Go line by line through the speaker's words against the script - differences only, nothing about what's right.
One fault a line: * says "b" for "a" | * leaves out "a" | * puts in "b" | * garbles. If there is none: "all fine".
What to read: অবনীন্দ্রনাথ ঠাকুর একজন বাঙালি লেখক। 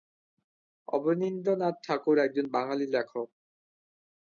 all fine